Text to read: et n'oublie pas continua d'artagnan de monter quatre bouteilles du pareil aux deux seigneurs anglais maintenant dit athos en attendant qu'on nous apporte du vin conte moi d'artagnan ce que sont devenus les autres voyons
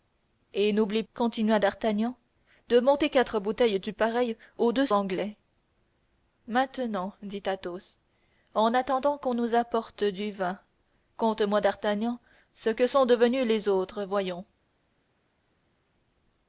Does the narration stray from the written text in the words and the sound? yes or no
yes